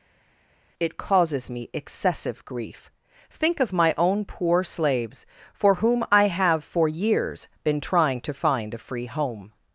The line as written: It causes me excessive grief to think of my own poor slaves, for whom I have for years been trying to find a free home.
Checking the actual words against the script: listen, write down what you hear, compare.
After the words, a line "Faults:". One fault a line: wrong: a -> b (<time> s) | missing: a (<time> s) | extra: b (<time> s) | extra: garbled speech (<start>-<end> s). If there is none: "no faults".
It causes me excessive grief think of my own poor slaves, for whom I have for years been trying to find a free home.
Faults:
missing: to (2.9 s)